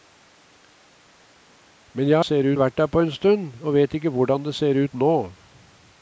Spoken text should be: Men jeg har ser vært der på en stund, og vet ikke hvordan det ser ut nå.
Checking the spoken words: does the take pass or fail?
pass